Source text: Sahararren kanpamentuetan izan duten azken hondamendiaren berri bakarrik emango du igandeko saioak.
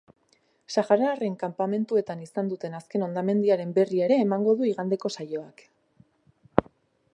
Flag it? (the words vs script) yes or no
yes